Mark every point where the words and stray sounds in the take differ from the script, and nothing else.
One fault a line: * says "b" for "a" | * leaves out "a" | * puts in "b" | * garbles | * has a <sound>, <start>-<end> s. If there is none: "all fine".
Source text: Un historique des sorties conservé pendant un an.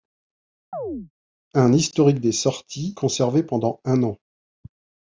* has a chirp, 0.7-1.1 s